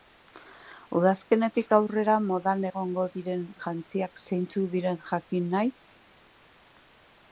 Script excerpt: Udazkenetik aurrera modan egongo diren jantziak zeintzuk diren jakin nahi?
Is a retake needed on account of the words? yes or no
no